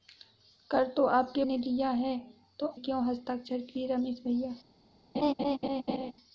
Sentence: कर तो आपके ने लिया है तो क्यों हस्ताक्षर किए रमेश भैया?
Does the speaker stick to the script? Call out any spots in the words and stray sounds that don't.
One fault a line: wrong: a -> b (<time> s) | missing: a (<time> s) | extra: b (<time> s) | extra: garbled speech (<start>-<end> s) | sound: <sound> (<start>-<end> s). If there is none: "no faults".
sound: laugh (5.1-6.1 s)